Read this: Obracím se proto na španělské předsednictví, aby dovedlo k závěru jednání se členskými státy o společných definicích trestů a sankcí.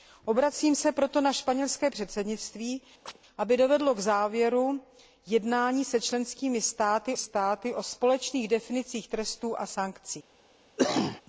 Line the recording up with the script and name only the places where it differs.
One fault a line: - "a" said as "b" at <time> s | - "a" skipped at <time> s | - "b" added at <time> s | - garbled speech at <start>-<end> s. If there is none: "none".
- "státy" added at 7.1 s